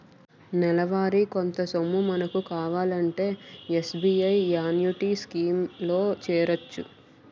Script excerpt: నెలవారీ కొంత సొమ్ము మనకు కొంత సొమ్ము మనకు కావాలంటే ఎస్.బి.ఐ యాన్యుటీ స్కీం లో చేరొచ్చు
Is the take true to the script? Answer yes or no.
no